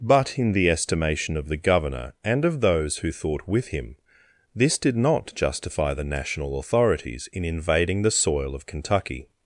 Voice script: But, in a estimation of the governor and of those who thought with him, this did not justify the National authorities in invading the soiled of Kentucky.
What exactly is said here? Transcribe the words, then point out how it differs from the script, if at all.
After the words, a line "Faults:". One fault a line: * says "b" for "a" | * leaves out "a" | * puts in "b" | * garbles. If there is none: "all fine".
But, in the estimation of the governor and of those who thought with him, this did not justify the National authorities in invading the soil of Kentucky.
Faults:
* says "the" for "a"
* says "soil" for "soiled"